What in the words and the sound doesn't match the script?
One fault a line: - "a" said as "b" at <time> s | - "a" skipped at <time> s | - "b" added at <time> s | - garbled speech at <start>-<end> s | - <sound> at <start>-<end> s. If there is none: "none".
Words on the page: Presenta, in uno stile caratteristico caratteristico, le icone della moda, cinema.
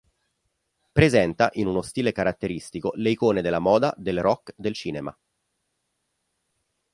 - "caratteristico" skipped at 2.9 s
- "del rock del" added at 4.0 s